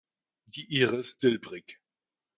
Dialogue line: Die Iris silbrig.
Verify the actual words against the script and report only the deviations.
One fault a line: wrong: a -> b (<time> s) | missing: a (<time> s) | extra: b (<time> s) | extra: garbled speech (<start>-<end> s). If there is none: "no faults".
no faults